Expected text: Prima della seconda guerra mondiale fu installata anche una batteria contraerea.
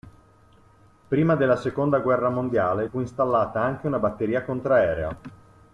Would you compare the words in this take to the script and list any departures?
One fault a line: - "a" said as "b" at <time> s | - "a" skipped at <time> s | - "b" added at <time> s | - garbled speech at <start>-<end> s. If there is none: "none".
none